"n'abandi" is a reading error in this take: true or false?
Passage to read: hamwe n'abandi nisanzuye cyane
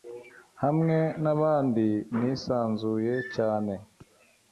false